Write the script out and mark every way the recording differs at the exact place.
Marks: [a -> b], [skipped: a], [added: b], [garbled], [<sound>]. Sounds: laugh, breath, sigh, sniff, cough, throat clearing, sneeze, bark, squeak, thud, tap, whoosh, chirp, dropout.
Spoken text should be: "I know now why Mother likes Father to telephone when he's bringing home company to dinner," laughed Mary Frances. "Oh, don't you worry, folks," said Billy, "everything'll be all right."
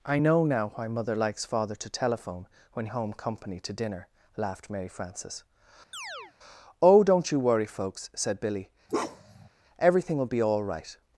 "I know now why Mother likes Father to telephone when [skipped: he's bringing] home company to dinner," laughed Mary Frances. [chirp] "Oh, don't you worry, folks," said Billy, [bark] "everything'll be all right."